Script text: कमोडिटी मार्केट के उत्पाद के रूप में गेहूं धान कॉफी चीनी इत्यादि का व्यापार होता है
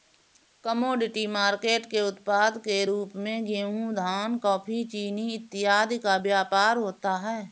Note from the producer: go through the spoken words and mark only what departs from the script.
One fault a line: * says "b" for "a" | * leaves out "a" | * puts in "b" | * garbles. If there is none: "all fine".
all fine